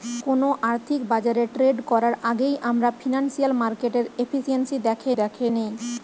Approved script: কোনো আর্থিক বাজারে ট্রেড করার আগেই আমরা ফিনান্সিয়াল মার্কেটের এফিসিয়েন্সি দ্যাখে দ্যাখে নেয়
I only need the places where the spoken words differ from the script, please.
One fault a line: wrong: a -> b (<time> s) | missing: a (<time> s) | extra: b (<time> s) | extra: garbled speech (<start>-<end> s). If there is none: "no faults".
no faults